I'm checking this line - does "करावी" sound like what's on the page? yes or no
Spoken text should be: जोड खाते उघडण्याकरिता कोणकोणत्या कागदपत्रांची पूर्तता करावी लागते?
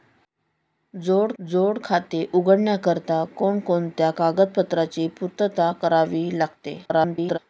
yes